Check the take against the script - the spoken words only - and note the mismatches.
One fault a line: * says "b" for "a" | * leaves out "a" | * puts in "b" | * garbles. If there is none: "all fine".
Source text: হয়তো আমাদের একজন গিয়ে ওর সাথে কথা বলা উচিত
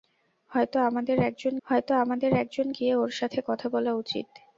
* puts in "হয়তো আমাদের একজন"